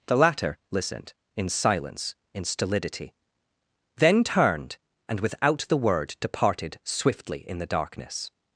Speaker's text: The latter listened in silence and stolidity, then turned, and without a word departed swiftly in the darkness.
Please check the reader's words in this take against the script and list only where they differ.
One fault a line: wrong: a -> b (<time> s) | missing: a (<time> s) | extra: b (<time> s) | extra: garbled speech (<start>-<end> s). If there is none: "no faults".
wrong: and -> in (2.3 s)
wrong: a -> the (5.7 s)